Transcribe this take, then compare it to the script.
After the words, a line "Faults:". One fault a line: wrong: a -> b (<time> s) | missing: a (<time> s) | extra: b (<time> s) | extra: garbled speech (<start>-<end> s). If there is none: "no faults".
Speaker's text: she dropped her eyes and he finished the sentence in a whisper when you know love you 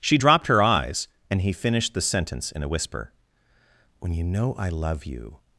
she dropped her eyes and he finished the sentence in a whisper when you know i love you
Faults:
extra: i (4.5 s)